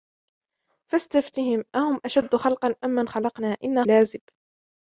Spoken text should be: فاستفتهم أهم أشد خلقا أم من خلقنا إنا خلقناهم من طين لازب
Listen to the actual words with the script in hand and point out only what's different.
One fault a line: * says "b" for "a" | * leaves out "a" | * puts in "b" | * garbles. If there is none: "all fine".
* leaves out "خلقناهم من طين"